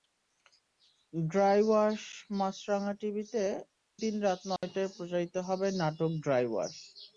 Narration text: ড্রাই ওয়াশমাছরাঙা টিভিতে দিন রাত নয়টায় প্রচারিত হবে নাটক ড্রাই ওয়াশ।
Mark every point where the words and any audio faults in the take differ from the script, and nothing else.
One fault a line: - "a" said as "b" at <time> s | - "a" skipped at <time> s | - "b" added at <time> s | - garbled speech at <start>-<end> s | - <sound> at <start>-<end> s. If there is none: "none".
- dropout at 4.6-4.6 s